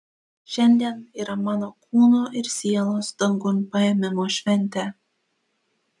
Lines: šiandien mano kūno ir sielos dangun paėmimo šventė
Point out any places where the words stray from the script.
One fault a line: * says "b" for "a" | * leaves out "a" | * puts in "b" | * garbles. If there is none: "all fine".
* puts in "yra"